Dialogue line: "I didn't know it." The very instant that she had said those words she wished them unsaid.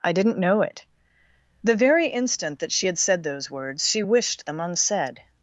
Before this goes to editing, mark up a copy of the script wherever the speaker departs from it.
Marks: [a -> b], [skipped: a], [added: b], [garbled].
"I didn't know it." The very instant that she had said those words she wished them unsaid.